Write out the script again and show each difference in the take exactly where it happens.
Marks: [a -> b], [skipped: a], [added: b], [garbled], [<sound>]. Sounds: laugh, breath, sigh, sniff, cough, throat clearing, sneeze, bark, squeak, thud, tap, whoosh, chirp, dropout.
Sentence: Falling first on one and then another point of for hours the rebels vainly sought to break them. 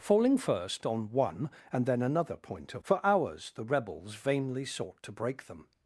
Falling first on one and then another point of for hours the rebels vainly sought to break them.